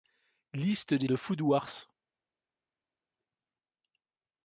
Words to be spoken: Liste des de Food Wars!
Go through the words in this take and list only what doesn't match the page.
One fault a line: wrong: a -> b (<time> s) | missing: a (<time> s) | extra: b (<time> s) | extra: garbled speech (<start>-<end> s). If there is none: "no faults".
no faults